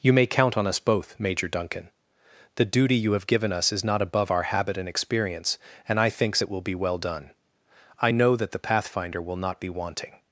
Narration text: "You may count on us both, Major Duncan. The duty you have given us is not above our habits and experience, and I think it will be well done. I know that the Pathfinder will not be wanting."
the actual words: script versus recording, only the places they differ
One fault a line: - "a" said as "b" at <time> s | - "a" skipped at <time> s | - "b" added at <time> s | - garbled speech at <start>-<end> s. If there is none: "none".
- "habits" said as "habit" at 4.4 s
- "think" said as "thinks" at 6.1 s